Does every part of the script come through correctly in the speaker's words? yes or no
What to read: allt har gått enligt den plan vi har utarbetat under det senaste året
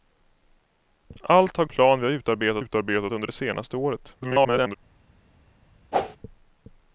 no